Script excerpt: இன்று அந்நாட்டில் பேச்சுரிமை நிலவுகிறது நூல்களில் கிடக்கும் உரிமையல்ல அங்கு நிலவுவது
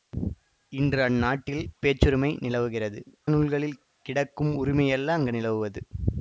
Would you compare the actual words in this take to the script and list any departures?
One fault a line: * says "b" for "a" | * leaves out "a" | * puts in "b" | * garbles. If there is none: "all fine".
all fine